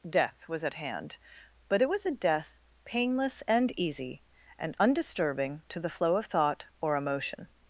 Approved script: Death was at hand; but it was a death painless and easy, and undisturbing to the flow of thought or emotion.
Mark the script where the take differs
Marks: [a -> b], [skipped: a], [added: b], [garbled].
Death was at hand; but it was a death painless and easy, and undisturbing to the flow of thought or emotion.